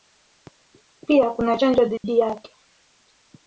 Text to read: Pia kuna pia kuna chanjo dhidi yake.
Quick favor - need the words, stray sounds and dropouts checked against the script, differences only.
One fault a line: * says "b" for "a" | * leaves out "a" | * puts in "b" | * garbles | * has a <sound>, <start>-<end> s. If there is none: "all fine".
* leaves out "pia kuna"
* has a dropout, 2.0-2.0 s